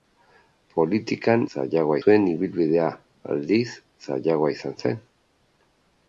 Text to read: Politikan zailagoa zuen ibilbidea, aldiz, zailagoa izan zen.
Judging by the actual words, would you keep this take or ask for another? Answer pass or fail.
pass